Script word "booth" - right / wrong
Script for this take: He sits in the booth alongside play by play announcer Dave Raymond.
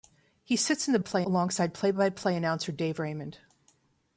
wrong